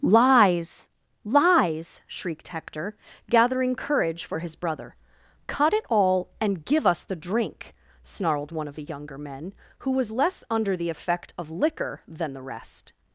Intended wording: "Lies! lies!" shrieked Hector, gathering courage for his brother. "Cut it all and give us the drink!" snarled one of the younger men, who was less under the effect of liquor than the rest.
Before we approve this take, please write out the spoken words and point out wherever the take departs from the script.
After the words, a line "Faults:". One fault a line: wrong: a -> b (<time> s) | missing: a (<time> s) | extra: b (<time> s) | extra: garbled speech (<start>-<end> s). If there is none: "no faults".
"Lies! lies!" shrieked Hector, gathering courage for his brother. "Cut it all and give us the drink!" snarled one of the younger men, who was less under the effect of liquor than the rest.
Faults:
no faults